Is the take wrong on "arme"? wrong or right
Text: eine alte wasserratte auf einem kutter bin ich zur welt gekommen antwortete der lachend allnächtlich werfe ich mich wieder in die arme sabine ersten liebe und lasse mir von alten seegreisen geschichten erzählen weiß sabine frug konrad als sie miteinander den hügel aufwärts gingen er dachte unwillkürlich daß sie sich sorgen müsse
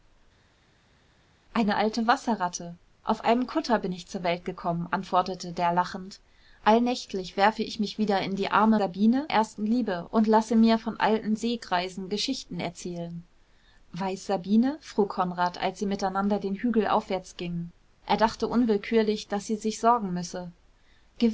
right